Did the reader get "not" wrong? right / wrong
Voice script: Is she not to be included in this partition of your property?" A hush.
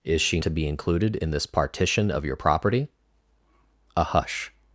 wrong